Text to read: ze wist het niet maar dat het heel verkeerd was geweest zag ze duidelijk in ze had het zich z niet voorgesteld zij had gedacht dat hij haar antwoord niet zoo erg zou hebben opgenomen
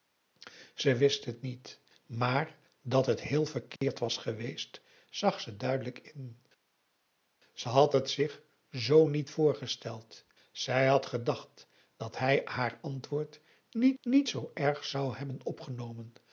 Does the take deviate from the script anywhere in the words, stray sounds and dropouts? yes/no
yes